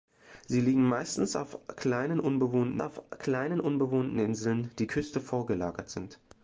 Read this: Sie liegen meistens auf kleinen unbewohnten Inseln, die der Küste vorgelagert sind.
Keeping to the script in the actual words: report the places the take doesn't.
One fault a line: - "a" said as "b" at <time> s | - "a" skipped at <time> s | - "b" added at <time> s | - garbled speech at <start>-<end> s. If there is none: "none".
- "auf kleinen unbewohnten" added at 2.8 s
- "der" skipped at 4.9 s